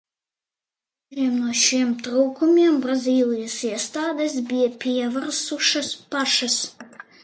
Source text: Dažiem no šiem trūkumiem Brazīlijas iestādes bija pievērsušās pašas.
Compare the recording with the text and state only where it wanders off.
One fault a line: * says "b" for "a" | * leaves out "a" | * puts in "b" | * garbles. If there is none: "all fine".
all fine